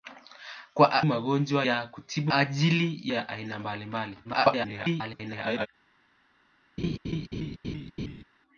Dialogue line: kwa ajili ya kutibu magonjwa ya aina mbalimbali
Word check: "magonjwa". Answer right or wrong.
wrong